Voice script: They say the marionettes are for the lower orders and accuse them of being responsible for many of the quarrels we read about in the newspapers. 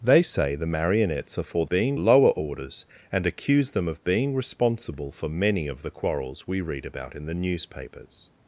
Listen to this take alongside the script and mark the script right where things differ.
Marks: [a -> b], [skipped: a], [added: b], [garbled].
They say the marionettes are for [the -> being] lower orders and accuse them of being responsible for many of the quarrels we read about in the newspapers.